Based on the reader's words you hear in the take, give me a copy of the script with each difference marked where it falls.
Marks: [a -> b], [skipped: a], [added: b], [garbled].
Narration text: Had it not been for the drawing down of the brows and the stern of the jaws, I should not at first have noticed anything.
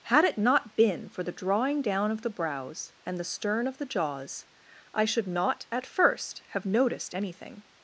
Had it not been for the drawing down of the brows and the stern of the jaws, I should not at first have noticed anything.